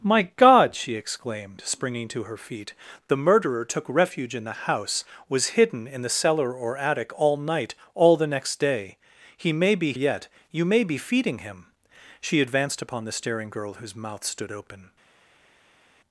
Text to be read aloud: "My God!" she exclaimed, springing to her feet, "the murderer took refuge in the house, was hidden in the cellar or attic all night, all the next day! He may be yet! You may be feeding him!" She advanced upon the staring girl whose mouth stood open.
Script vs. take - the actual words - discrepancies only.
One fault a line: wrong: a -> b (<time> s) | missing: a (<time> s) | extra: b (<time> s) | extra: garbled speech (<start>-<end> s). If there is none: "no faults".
no faults